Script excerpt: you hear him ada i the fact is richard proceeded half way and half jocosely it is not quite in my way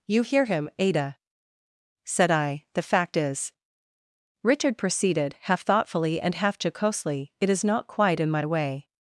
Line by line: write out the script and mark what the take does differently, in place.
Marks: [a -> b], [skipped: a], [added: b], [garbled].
you hear him ada [added: said] i the fact is richard proceeded half [way -> thoughtfully] and half jocosely it is not quite in my way